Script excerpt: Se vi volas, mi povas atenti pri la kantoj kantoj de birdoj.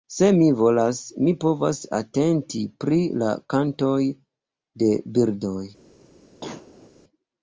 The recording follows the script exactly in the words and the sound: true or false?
false